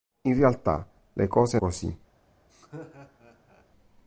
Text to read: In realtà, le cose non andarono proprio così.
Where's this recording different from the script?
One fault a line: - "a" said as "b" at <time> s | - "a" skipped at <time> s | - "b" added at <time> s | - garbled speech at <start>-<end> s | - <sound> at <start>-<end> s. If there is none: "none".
- "non andarono proprio" skipped at 1.6 s
- laugh at 2.5-3.7 s